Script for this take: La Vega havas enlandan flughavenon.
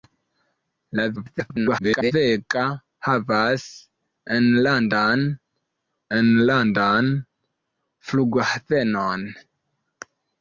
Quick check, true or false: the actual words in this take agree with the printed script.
false